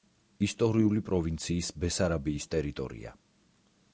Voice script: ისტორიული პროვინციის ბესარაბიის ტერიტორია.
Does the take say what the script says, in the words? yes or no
yes